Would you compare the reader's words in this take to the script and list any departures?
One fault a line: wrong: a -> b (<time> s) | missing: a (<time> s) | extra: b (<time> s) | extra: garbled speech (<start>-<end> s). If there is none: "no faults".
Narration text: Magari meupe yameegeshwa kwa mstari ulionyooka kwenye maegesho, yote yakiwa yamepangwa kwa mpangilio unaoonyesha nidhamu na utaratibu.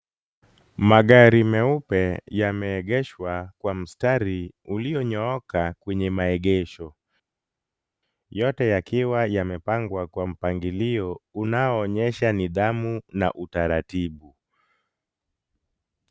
no faults